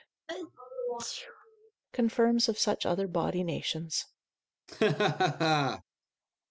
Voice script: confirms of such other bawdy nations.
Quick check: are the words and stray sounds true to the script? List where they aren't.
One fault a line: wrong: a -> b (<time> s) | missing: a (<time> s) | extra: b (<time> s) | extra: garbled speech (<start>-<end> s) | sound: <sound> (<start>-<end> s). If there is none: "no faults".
sound: sneeze (0.3-1.7 s)
sound: laugh (4.7-5.8 s)